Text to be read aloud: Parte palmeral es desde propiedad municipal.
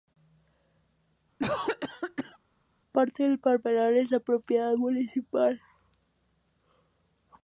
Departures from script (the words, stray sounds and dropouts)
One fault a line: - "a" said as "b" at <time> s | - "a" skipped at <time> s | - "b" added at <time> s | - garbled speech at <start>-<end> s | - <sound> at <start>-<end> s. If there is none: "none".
- cough at 1.4-2.4 s
- "del" added at 3.2 s
- "desde" said as "de" at 4.1 s